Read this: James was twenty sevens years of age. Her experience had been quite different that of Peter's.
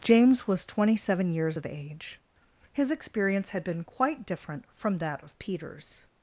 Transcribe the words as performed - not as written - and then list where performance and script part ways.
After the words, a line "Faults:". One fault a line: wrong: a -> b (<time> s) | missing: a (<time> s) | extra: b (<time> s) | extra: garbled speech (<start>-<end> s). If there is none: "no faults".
James was twenty seven years of age. His experience had been quite different from that of Peter's.
Faults:
wrong: sevens -> seven (0.9 s)
wrong: Her -> His (2.7 s)
extra: from (4.7 s)